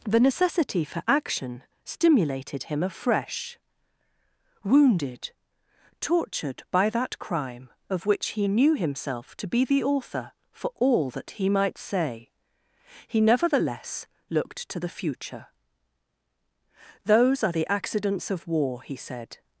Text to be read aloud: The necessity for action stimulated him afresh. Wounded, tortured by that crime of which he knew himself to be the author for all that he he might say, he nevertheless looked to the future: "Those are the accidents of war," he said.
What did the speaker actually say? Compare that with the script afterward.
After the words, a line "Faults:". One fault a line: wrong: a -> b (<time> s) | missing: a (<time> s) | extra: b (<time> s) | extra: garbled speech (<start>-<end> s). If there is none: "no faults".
The necessity for action stimulated him afresh. Wounded, tortured by that crime of which he knew himself to be the author for all that he might say, he nevertheless looked to the future: "Those are the accidents of war," he said.
Faults:
missing: he (11.5 s)